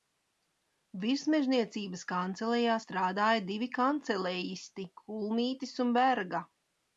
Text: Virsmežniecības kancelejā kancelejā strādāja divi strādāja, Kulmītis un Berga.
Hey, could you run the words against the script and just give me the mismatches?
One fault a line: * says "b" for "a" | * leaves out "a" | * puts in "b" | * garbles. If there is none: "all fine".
* leaves out "kancelejā"
* says "kancelejisti" for "strādāja"